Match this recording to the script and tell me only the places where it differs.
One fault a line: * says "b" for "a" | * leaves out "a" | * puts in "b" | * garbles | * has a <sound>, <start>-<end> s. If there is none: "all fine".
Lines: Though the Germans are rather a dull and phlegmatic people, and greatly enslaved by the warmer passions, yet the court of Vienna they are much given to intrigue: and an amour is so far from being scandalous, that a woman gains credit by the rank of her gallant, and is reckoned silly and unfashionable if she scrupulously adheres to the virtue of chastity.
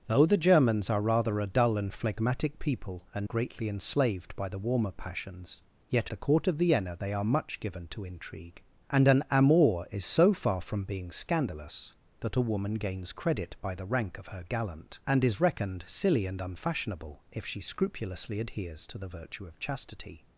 all fine